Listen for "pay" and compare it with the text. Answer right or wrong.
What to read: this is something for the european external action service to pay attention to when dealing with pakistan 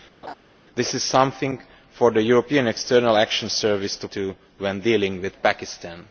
wrong